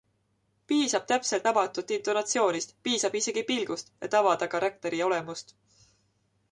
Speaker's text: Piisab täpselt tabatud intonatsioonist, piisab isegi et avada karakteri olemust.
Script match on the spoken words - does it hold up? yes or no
no